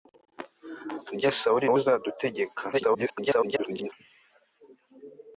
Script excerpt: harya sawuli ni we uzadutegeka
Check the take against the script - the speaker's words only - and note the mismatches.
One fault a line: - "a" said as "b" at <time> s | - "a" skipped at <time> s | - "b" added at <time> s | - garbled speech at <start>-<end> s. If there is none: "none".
- "ni" skipped at 1.7 s
- garbled speech at 2.7-3.9 s